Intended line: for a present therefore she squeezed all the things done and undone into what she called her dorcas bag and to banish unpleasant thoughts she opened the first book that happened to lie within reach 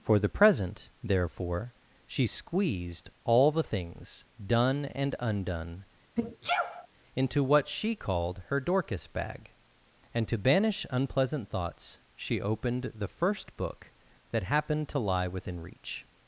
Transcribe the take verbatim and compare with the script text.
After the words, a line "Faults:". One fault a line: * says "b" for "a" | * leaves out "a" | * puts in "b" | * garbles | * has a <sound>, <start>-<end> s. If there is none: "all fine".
for the present therefore she squeezed all the things done and undone into what she called her dorcas bag and to banish unpleasant thoughts she opened the first book that happened to lie within reach
Faults:
* says "the" for "a"
* has a sneeze, 6.2-6.9 s